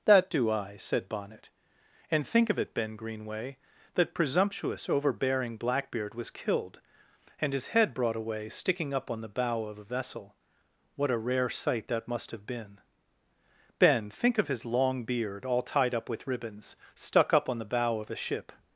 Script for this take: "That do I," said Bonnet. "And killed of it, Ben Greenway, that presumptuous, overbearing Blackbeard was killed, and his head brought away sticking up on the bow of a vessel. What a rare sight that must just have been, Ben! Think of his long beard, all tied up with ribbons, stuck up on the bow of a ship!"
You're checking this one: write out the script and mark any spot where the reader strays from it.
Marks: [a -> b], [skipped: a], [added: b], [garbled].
"That do I," said Bonnet. "And [killed -> think] of it, Ben Greenway, that presumptuous, overbearing Blackbeard was killed, and his head brought away sticking up on the bow of a vessel. What a rare sight that must [skipped: just] have been, Ben! Think of his long beard, all tied up with ribbons, stuck up on the bow of a ship!"